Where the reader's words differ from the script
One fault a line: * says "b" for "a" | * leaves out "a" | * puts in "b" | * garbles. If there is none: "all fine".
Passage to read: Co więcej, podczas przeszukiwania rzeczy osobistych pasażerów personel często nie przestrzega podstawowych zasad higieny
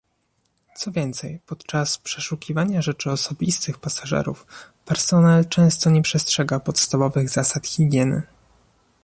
all fine